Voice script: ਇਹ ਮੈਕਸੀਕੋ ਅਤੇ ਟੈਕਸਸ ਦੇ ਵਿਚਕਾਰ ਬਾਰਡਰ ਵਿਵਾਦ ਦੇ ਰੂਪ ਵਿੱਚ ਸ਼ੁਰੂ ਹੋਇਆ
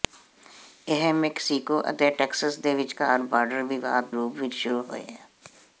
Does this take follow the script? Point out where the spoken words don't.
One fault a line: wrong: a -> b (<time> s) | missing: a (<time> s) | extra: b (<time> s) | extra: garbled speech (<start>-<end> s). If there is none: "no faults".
missing: ਦੇ (4.1 s)